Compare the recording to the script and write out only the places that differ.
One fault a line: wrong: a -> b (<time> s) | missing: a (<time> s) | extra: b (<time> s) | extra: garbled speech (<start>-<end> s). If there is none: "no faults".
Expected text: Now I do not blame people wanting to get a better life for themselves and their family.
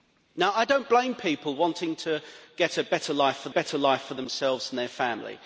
extra: better life for (3.5 s)